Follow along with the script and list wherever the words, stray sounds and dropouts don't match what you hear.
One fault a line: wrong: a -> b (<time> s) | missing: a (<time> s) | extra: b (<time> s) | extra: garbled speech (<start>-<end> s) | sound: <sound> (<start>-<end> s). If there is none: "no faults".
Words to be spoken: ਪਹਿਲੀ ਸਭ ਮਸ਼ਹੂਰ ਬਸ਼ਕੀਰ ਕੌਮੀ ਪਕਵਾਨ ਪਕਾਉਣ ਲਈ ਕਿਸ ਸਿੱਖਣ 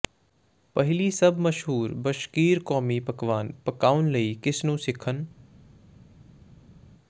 extra: ਨੂੰ (4.7 s)